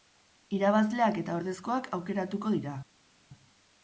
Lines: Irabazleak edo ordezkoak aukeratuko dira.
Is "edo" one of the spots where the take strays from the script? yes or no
yes